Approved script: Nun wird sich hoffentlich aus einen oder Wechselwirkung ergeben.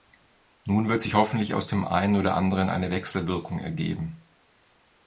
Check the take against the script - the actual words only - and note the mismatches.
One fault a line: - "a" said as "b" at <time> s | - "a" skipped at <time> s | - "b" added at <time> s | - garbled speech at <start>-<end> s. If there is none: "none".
- "dem" added at 1.7 s
- "anderen eine" added at 2.4 s